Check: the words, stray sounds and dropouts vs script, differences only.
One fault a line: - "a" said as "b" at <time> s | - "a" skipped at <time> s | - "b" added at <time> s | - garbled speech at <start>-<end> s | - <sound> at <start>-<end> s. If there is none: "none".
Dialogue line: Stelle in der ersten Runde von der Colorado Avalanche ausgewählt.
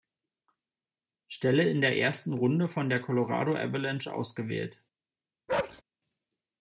- bark at 5.5-5.8 s